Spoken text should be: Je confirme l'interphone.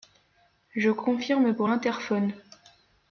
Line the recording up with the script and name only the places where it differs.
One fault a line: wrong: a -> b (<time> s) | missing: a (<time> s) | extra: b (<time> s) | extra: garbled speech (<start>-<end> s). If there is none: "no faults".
extra: pour (1.5 s)